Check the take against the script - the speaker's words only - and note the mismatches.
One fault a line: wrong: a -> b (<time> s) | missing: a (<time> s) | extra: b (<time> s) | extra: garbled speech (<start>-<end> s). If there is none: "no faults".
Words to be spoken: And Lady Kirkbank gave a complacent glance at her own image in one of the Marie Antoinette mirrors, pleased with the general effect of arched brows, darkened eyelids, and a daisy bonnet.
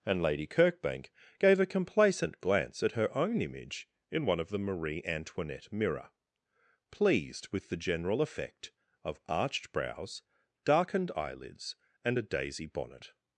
wrong: mirrors -> mirror (5.7 s)